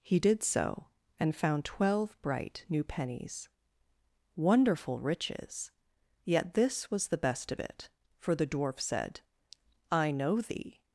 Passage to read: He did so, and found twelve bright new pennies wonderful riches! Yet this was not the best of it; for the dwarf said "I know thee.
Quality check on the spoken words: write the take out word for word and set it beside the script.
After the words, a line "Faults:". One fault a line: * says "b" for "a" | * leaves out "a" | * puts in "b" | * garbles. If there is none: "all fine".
He did so, and found twelve bright new pennies wonderful riches! Yet this was the best of it; for the dwarf said "I know thee.
Faults:
* leaves out "not"